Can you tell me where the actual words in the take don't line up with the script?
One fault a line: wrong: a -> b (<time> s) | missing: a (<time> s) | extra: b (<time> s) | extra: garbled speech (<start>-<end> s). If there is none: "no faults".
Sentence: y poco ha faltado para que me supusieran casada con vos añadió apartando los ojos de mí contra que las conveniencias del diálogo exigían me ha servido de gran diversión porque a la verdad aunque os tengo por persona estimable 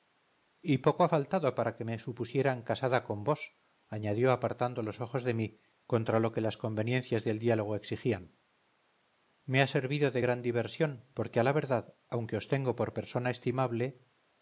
extra: lo (6.2 s)